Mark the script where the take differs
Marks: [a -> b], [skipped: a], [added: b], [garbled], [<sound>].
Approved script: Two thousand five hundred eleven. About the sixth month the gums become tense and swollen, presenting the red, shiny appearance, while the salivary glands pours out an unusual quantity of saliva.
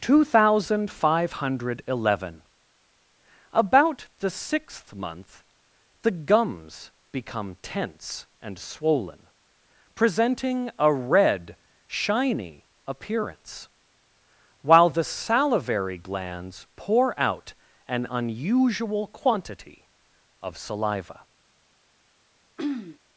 Two thousand five hundred eleven. About the sixth month the gums become tense and swollen, presenting [the -> a] red, shiny appearance, while the salivary glands [pours -> pour] out an unusual quantity of saliva. [throat clearing]